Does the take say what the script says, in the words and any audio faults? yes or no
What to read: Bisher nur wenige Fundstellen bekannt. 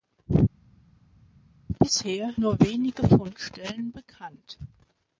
yes